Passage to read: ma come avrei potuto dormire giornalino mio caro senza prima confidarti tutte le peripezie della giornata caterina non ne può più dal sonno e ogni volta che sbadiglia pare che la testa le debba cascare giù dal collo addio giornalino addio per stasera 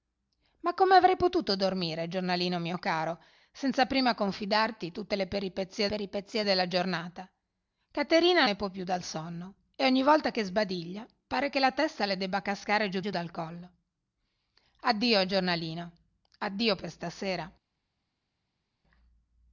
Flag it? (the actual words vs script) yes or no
yes